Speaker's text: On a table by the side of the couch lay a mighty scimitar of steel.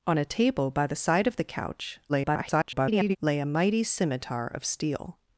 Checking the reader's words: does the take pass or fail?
fail